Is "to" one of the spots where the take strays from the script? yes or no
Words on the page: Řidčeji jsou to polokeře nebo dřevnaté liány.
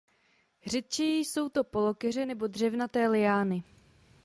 no